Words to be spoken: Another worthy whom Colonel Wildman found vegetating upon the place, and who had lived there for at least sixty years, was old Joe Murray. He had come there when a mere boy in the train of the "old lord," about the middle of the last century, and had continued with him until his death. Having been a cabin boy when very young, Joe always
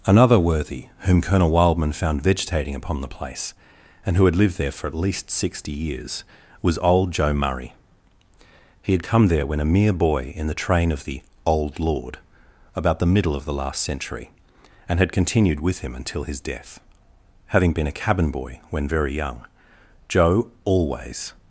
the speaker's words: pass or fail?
pass